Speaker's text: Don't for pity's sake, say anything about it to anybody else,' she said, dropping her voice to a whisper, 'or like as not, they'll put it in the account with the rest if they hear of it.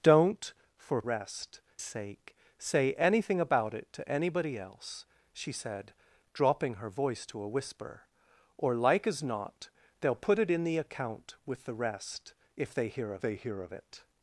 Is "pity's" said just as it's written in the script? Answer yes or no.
no